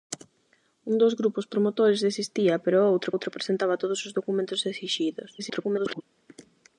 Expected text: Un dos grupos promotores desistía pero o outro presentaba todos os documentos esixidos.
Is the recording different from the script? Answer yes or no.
yes